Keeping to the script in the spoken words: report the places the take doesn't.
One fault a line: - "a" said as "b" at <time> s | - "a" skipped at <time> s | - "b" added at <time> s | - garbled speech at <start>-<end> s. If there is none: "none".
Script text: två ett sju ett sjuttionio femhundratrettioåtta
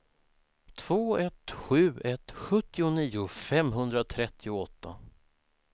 none